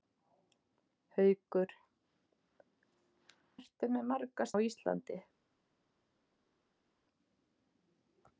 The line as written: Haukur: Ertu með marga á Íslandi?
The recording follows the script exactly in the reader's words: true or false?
true